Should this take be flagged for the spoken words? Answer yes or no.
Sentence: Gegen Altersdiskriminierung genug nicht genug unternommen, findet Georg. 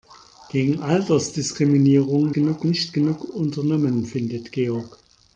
no